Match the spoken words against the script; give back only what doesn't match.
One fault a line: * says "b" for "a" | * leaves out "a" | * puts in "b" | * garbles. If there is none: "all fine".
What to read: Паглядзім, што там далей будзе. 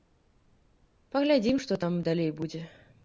all fine